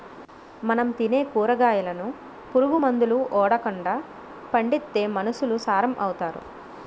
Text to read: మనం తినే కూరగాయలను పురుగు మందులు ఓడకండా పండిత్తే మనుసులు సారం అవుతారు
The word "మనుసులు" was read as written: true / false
true